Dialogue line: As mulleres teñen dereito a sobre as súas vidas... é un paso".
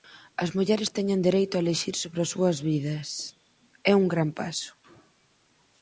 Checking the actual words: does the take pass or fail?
fail